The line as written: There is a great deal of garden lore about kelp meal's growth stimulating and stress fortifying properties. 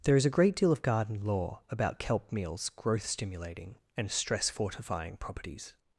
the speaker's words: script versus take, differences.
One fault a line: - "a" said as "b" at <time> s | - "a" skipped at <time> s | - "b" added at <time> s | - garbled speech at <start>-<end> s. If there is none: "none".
none